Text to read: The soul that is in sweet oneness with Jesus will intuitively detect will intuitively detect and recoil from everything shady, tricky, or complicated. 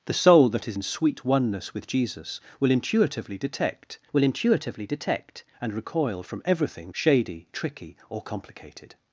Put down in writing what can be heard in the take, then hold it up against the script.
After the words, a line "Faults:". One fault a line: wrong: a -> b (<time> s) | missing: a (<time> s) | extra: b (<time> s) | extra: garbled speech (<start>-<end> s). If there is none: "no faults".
The soul that is in sweet oneness with Jesus will intuitively detect will intuitively detect and recoil from everything shady, tricky, or complicated.
Faults:
no faults